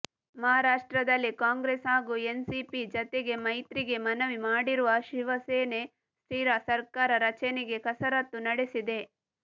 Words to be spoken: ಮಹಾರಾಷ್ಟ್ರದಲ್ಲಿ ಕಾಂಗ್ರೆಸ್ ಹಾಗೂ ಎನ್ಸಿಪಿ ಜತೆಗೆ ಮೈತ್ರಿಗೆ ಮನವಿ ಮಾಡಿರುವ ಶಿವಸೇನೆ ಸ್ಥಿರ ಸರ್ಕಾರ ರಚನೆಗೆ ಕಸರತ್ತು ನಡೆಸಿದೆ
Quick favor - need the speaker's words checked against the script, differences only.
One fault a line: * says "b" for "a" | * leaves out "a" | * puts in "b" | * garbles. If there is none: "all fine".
all fine